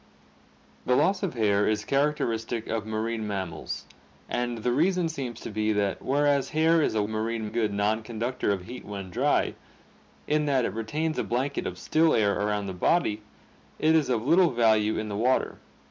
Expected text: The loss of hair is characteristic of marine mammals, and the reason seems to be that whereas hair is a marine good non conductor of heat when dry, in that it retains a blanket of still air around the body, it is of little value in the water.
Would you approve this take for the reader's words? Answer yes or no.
yes